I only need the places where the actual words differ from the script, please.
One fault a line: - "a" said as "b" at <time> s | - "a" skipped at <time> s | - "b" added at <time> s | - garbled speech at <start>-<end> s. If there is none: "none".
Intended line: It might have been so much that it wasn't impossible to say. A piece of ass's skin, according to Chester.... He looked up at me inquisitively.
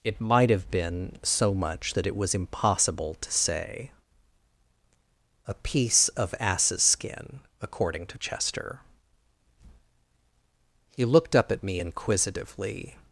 - "wasn't" said as "was" at 2.2 s